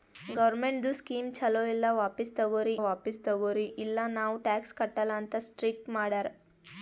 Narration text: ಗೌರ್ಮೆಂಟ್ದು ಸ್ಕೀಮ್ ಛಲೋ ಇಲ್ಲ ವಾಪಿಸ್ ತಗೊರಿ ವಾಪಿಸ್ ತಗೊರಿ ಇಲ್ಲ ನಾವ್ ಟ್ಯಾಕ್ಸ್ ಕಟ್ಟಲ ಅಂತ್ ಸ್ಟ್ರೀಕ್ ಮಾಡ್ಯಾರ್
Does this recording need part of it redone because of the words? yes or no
no